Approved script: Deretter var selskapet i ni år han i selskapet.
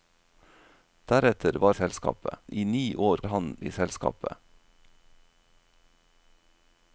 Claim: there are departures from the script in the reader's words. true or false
false